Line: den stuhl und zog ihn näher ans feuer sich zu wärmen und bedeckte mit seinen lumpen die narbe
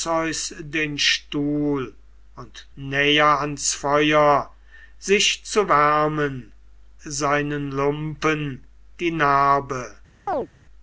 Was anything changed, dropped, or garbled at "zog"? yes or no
yes